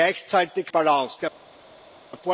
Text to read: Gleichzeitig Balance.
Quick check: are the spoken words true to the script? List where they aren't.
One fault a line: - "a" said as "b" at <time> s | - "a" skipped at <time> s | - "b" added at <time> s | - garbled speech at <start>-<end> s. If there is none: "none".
none